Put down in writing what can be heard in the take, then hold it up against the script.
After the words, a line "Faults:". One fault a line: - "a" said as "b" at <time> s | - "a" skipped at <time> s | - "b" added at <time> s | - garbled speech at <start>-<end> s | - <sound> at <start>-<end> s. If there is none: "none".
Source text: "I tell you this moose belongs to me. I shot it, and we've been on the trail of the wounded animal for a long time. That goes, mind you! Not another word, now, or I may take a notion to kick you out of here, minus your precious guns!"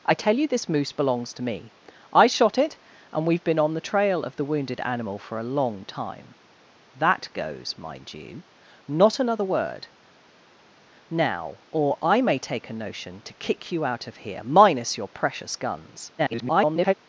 "I tell you this moose belongs to me. I shot it, and we've been on the trail of the wounded animal for a long time. That goes, mind you! Not another word, now, or I may take a notion to kick you out of here, minus your precious guns!" [garbled]
Faults:
- garbled speech at 16.2-16.9 s